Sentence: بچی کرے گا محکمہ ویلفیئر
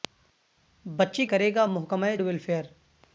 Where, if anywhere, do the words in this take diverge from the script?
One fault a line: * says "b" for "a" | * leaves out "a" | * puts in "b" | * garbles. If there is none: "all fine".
all fine